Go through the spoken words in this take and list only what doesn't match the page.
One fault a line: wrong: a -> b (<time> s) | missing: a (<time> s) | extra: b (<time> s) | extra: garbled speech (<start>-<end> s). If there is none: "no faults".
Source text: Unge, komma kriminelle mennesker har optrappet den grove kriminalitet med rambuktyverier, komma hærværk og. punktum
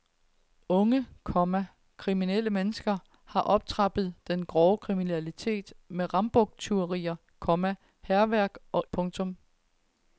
no faults